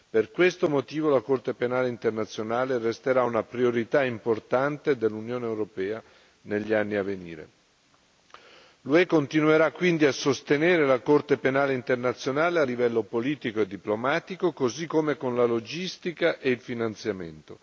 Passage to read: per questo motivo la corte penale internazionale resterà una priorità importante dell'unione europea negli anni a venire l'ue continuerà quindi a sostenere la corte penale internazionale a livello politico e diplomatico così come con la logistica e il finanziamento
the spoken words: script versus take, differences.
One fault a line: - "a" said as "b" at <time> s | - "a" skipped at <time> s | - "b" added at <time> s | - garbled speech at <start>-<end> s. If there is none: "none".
none